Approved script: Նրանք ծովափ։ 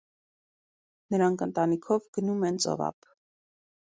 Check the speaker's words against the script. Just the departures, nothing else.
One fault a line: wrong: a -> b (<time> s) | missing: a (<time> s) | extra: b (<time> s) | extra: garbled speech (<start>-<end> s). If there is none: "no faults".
extra: ընտանիքով գնում են (1.4 s)